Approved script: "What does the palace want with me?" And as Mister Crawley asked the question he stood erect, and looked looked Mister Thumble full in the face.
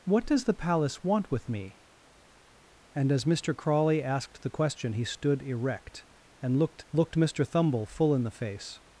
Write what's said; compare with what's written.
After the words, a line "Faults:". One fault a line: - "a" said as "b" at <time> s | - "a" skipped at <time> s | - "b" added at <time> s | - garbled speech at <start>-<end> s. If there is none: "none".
"What does the palace want with me?" And as Mister Crawley asked the question he stood erect, and looked looked Mister Thumble full in the face.
Faults:
none